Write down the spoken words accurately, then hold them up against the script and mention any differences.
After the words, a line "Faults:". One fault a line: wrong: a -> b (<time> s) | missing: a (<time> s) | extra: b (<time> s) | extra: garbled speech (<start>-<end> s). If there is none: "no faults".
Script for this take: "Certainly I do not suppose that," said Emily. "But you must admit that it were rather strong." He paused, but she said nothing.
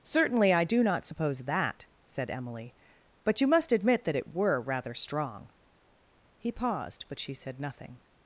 "Certainly I do not suppose that," said Emily. "But you must admit that it were rather strong." He paused, but she said nothing.
Faults:
no faults